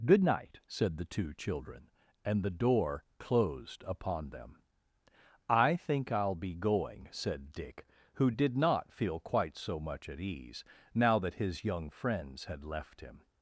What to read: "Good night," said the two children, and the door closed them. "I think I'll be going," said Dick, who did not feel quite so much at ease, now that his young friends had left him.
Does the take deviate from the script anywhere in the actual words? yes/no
yes